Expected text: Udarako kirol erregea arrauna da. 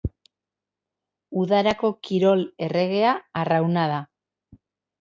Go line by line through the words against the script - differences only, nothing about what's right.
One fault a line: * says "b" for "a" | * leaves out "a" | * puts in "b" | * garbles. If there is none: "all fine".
all fine